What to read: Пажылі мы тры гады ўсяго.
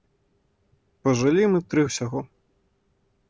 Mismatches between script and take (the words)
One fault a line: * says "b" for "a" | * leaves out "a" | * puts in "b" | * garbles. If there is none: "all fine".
* leaves out "гады"